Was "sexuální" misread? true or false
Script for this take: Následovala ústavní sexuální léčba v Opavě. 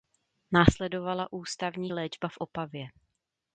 true